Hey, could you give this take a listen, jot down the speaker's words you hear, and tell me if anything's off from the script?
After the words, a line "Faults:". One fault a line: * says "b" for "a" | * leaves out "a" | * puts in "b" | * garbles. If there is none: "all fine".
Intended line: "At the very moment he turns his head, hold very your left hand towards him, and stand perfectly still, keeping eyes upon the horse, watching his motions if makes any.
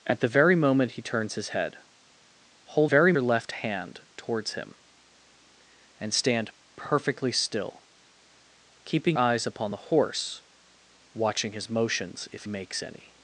"At the very moment he turns his head, hold very your left hand towards him, and stand perfectly still, keeping eyes upon the horse, watching his motions if makes any.
Faults:
all fine